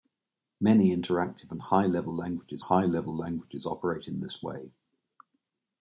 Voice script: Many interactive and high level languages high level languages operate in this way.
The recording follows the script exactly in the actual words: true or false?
true